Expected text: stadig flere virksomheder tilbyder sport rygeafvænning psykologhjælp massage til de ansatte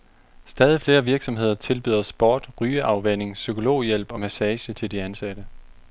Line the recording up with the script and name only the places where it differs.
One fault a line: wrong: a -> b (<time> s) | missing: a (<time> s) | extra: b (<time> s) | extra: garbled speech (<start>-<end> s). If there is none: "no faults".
extra: og (4.1 s)